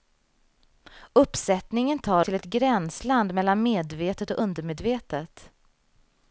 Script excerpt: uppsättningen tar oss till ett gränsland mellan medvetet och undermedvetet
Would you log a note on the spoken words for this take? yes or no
yes